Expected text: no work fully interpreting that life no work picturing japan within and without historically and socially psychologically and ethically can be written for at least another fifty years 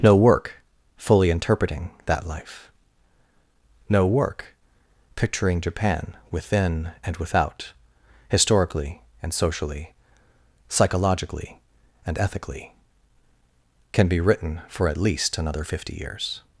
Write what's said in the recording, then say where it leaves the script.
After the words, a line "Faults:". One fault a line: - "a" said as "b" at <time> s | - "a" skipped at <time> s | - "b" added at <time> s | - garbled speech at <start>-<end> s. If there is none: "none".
no work fully interpreting that life no work picturing japan within and without historically and socially psychologically and ethically can be written for at least another fifty years
Faults:
none